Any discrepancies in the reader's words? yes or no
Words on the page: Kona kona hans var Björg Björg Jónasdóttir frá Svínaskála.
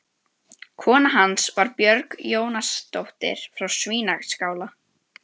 yes